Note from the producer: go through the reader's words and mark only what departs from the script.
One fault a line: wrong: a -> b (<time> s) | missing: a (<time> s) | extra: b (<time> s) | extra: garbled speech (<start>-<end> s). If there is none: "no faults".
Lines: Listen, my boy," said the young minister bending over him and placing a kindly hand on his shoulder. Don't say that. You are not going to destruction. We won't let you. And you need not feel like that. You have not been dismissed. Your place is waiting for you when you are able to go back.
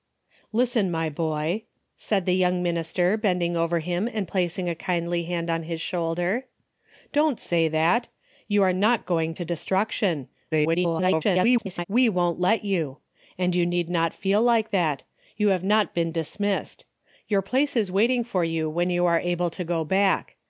extra: garbled speech (10.5-11.8 s)